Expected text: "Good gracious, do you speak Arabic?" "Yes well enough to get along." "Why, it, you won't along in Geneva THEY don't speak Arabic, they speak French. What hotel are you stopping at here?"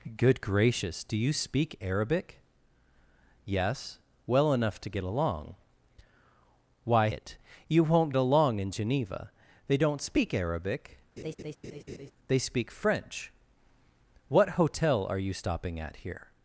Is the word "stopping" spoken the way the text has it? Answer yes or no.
yes